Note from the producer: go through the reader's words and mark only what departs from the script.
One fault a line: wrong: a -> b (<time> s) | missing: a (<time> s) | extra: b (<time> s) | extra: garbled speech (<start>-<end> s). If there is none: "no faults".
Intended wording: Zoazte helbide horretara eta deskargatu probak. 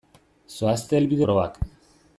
missing: horretara eta deskargatu (1.3 s)